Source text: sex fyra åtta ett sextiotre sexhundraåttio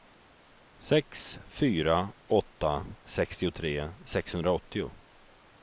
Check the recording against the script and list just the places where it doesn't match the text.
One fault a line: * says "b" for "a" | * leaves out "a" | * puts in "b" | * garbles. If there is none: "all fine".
* leaves out "ett"